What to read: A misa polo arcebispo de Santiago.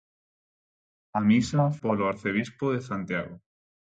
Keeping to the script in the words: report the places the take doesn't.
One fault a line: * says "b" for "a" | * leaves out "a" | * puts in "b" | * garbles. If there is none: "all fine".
all fine